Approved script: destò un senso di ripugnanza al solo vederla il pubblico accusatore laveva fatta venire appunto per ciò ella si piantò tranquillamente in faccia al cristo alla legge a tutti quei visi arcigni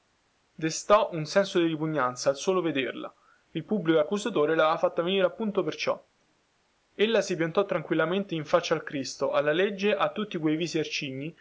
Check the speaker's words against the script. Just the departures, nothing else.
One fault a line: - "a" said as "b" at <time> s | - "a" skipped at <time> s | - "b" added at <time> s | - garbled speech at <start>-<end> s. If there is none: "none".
none